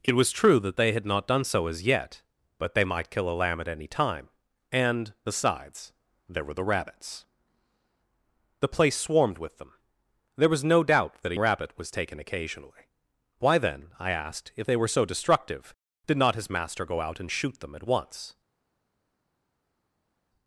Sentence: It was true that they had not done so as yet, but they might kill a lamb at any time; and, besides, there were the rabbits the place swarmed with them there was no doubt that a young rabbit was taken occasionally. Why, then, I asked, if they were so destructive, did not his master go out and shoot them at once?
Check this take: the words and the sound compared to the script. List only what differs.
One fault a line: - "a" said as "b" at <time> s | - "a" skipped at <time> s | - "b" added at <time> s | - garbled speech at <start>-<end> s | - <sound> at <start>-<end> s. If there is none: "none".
- "young" skipped at 11.4 s